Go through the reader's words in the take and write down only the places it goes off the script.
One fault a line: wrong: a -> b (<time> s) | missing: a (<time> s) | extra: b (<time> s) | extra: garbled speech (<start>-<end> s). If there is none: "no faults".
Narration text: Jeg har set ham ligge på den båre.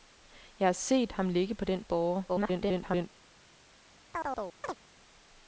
extra: garbled speech (2.3-3.1 s)